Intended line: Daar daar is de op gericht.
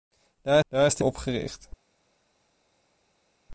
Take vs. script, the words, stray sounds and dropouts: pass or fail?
pass